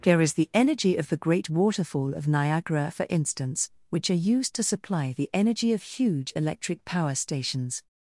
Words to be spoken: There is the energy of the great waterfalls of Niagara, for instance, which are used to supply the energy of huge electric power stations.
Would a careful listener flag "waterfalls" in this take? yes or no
yes